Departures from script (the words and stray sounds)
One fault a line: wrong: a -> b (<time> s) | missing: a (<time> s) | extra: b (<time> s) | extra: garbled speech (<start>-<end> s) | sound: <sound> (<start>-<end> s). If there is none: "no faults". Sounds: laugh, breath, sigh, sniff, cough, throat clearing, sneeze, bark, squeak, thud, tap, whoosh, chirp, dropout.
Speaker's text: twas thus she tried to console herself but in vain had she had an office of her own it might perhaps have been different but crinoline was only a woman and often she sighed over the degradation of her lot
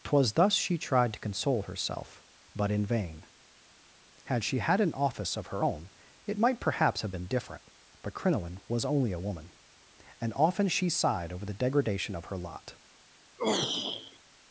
sound: throat clearing (13.4-14.2 s)